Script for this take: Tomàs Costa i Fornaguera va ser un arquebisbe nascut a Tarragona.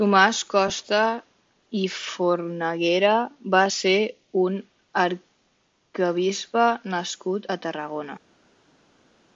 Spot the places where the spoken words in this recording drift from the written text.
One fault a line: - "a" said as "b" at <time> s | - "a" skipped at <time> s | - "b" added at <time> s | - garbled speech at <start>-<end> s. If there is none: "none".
none